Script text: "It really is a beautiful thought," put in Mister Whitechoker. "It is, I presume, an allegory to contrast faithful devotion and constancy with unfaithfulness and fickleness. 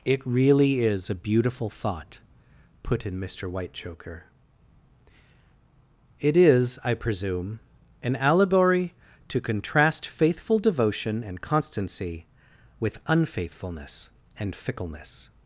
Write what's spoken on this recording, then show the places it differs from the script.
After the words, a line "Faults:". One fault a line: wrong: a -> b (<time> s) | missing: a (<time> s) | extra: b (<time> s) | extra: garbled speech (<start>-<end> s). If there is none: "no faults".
"It really is a beautiful thought," put in Mister Whitechoker. "It is, I presume, an allegory to contrast faithful devotion and constancy with unfaithfulness and fickleness.
Faults:
no faults